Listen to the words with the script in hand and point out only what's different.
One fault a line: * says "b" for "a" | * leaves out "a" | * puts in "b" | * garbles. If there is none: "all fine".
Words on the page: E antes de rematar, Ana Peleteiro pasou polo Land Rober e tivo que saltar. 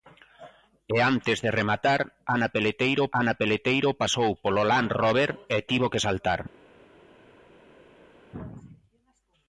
* puts in "Ana Peleteiro"